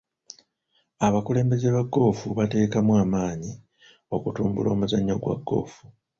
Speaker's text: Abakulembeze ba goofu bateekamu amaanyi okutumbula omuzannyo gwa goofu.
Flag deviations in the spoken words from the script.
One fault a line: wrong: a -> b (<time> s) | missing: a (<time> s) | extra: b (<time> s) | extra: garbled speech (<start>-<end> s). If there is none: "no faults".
no faults